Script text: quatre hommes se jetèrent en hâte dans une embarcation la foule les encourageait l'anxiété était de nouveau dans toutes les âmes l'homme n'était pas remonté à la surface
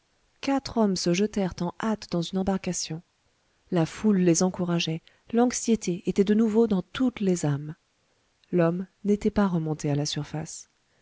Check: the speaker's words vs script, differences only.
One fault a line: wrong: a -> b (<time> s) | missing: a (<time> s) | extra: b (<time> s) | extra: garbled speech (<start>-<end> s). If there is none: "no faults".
no faults